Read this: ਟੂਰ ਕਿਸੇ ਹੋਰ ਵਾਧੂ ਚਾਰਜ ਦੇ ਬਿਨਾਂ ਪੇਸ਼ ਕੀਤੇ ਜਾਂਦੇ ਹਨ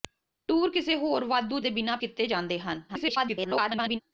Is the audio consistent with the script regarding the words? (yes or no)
no